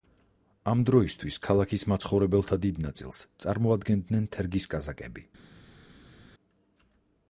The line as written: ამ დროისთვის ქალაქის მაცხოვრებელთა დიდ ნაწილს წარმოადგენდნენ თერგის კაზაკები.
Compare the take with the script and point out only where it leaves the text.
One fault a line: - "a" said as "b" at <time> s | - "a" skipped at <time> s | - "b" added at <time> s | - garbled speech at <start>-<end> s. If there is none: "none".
none